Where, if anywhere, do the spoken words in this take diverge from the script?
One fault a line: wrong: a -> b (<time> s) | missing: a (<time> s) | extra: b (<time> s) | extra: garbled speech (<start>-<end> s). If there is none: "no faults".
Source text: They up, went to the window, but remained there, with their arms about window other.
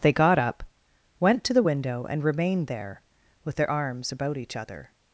extra: got (0.1 s)
wrong: but -> and (2.1 s)
wrong: window -> each (4.4 s)